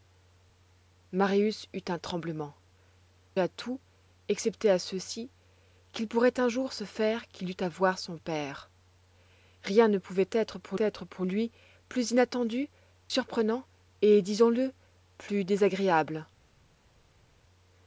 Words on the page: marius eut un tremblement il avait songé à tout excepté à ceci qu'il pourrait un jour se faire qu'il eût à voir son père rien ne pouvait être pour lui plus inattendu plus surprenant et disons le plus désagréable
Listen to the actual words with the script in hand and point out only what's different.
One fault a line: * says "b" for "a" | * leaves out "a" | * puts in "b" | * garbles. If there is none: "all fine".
* leaves out "il avait songé"
* puts in "être pour"
* leaves out "plus"